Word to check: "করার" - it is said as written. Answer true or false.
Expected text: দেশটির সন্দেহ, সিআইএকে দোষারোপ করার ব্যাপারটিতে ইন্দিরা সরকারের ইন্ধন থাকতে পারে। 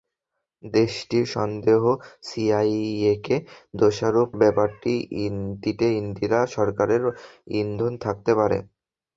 false